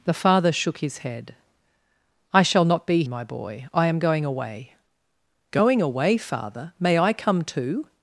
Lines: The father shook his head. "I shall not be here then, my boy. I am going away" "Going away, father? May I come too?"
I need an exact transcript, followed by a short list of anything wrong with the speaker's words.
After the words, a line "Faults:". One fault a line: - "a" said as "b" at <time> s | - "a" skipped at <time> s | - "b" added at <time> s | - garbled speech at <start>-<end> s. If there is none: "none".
The father shook his head. "I shall not be my boy. I am going away" "Going away, father? May I come too?"
Faults:
- "here then" skipped at 3.0 s